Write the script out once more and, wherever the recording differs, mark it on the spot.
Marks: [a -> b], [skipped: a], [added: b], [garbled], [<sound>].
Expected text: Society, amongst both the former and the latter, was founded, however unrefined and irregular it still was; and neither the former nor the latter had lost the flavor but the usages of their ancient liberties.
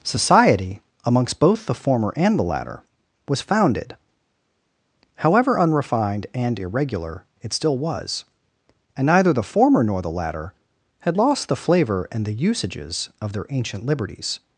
Society, amongst both the former and the latter, was founded, however unrefined and irregular it still was; and neither the former nor the latter had lost the flavor [but -> and] the usages of their ancient liberties.